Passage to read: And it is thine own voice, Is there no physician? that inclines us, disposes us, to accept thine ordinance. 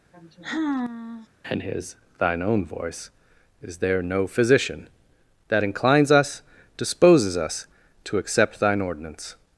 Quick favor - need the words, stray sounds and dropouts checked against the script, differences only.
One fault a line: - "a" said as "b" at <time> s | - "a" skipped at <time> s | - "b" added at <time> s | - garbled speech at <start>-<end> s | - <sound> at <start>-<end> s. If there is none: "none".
- sigh at 0.1-1.3 s
- "it is" said as "his" at 1.6 s